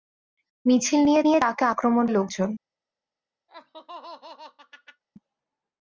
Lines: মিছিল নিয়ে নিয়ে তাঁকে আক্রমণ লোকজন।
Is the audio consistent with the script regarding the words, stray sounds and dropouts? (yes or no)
no